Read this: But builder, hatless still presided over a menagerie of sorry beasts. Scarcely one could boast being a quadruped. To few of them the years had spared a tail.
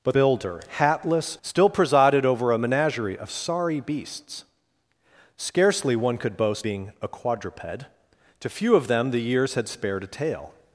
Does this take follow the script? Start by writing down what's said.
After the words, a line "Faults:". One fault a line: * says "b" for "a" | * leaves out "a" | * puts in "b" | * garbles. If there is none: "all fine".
But builder, hatless still presided over a menagerie of sorry beasts. Scarcely one could boast being a quadruped. To few of them the years had spared a tail.
Faults:
all fine